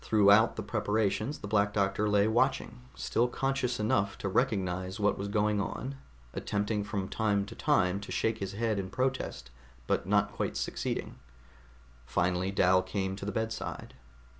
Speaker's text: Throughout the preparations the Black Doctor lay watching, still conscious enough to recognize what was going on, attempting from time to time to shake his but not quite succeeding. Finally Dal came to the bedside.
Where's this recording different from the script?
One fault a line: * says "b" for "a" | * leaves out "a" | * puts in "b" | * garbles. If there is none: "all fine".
* puts in "head in protest"